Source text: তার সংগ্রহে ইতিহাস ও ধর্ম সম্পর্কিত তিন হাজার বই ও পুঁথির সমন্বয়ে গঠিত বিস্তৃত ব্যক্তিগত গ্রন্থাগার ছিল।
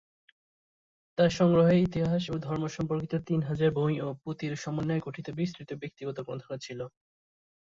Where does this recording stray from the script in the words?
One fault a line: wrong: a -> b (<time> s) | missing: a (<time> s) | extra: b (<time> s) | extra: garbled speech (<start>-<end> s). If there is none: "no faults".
no faults